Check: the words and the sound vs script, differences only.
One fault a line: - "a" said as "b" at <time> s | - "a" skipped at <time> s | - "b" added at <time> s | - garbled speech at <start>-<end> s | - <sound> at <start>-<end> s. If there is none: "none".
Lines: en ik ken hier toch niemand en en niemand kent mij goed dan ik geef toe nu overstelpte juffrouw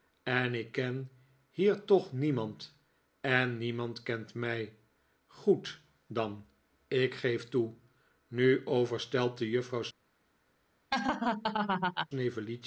- "en" skipped at 3.6 s
- laugh at 10.9-12.1 s